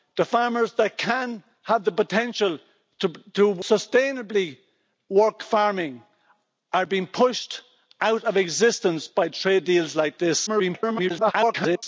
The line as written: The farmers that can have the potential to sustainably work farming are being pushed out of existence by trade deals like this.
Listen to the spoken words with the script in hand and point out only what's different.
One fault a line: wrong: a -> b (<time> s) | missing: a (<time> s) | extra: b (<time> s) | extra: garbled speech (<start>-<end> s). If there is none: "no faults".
extra: garbled speech (10.5-11.8 s)